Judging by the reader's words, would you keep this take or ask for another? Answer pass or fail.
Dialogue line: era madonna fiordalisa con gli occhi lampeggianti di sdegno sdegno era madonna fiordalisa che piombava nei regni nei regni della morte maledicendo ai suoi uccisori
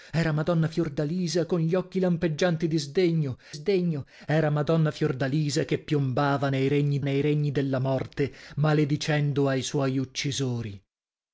pass